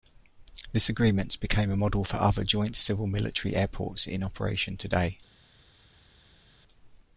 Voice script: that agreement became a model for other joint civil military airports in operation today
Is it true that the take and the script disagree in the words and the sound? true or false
true